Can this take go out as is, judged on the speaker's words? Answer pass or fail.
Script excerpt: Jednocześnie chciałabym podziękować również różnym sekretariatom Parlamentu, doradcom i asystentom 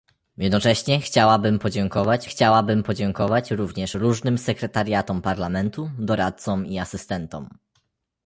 fail